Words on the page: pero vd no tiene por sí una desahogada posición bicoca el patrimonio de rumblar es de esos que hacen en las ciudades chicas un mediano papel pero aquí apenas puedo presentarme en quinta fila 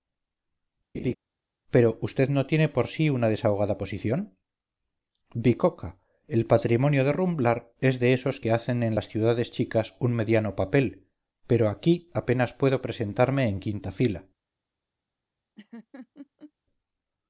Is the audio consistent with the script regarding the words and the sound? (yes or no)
no